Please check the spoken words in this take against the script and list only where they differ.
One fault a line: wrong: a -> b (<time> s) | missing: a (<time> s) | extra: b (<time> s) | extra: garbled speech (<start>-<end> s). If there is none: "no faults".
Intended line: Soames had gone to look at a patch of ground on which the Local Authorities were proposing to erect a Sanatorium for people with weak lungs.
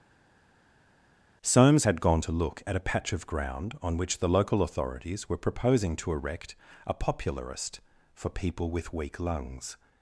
wrong: Sanatorium -> Popularist (6.9 s)